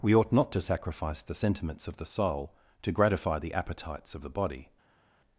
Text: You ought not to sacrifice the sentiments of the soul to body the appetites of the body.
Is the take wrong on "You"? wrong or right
wrong